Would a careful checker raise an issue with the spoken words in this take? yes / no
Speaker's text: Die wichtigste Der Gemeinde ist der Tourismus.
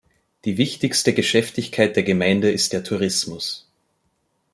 yes